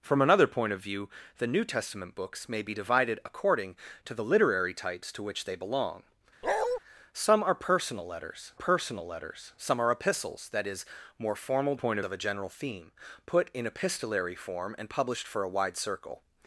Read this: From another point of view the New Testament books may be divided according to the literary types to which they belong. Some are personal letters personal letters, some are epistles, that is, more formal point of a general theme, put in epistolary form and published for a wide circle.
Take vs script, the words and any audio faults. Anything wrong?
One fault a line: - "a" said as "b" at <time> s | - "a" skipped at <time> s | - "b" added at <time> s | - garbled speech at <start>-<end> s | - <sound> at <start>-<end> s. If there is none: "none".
- bark at 6.4-6.8 s